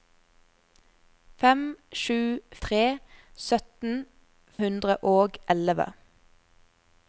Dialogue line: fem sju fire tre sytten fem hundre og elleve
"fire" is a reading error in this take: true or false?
true